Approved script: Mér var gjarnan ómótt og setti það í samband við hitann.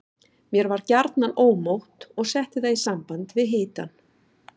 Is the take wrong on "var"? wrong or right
right